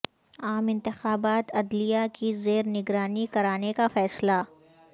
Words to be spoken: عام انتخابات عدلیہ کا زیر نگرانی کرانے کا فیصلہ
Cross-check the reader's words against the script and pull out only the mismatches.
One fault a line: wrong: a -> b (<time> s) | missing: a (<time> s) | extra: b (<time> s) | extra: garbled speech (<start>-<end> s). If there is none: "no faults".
wrong: کا -> کی (2.1 s)